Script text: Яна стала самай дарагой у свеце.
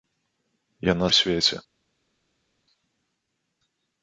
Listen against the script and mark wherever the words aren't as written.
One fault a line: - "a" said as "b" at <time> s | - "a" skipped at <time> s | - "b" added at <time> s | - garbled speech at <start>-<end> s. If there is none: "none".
- "стала самай дарагой" skipped at 1.1 s